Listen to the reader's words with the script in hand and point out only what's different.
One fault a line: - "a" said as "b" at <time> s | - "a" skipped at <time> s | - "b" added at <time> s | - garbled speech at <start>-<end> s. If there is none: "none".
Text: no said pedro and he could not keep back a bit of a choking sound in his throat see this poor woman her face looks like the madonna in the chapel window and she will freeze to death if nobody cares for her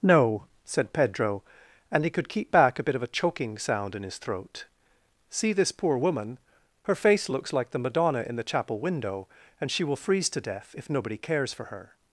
- "not" skipped at 2.3 s